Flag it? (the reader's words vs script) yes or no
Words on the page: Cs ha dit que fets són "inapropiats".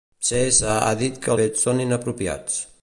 no